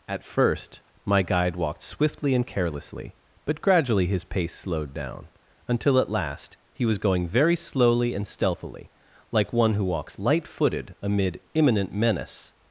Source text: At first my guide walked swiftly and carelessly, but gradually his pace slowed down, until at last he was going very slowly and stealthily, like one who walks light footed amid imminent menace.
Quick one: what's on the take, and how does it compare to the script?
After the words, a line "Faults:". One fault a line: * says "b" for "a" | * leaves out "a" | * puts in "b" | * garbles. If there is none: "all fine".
At first my guide walked swiftly and carelessly, but gradually his pace slowed down, until at last he was going very slowly and stealthily, like one who walks light footed amid imminent menace.
Faults:
all fine